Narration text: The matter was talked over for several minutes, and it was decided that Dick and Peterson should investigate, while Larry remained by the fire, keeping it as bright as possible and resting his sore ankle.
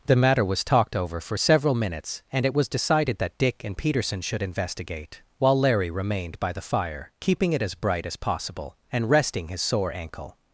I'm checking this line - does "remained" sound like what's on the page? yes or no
yes